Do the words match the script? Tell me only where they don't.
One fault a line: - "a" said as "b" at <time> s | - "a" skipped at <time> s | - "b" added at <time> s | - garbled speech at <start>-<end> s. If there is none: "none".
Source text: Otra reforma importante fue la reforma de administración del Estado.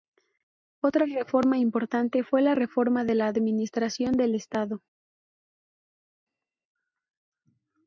- "la" added at 3.1 s